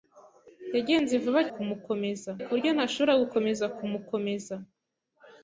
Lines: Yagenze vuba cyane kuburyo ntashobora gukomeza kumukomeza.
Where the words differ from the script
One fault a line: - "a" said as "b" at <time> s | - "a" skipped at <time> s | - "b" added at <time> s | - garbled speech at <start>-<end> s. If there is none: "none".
- "cyane" said as "kumukomeza" at 1.5 s